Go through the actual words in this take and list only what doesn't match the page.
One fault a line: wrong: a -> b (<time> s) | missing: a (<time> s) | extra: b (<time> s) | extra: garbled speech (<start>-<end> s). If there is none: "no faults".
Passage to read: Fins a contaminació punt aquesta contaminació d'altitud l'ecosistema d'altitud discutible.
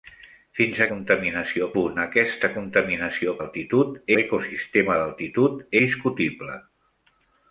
no faults